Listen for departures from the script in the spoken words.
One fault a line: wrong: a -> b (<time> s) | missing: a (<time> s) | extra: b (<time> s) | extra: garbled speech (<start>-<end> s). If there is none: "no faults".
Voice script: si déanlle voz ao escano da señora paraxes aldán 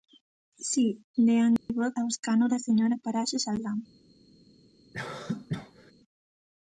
no faults